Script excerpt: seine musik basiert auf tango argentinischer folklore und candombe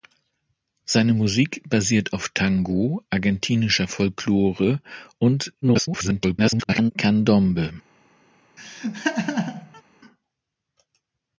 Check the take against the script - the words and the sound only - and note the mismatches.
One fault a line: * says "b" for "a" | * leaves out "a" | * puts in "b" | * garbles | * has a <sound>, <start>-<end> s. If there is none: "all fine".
* garbles
* has a laugh, 8.6-9.8 s